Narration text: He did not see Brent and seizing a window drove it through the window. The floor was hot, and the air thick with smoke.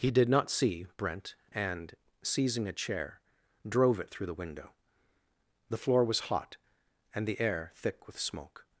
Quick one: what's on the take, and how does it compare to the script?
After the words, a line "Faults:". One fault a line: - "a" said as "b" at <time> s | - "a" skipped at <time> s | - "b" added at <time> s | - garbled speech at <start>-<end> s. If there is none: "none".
He did not see Brent and seizing a chair drove it through the window. The floor was hot, and the air thick with smoke.
Faults:
- "window" said as "chair" at 2.7 s